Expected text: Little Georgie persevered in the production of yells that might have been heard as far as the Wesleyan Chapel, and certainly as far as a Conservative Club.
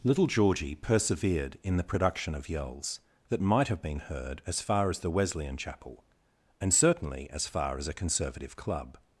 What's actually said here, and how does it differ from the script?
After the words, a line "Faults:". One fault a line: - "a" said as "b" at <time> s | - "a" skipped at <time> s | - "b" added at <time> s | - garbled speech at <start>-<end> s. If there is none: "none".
Little Georgie persevered in the production of yells that might have been heard as far as the Wesleyan Chapel, and certainly as far as a Conservative Club.
Faults:
none